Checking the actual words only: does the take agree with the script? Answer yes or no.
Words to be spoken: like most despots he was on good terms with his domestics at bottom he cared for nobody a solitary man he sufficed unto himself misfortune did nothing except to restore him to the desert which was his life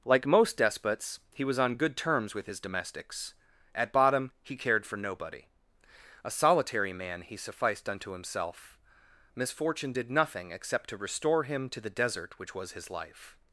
yes